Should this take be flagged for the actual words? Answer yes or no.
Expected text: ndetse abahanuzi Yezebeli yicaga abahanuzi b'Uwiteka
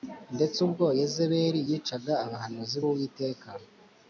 yes